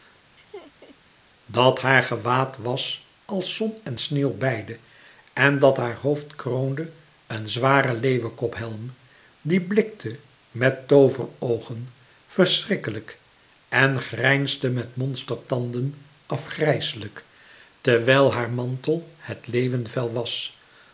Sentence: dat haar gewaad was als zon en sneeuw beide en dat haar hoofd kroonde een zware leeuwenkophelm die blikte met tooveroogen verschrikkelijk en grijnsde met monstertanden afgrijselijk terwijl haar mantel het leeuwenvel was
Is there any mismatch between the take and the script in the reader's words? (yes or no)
no